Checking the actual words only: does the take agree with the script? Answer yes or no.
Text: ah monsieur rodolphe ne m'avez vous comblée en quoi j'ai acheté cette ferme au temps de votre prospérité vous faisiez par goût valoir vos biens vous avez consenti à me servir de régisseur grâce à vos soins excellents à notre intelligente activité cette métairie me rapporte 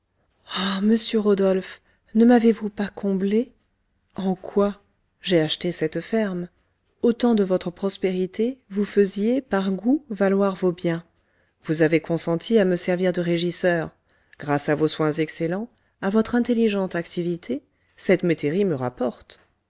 no